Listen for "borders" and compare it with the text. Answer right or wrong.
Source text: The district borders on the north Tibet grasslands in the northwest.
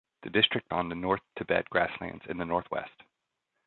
wrong